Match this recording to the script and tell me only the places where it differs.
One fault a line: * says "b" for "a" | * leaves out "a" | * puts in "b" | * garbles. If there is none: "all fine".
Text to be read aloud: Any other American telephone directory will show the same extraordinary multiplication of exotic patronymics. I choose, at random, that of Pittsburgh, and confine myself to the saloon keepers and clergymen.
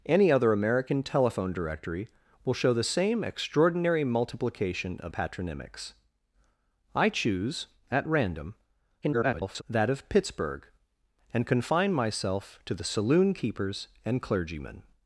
* leaves out "exotic"
* garbles